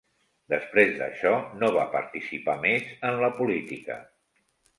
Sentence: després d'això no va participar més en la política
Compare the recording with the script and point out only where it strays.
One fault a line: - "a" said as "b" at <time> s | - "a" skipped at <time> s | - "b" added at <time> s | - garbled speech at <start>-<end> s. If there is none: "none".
none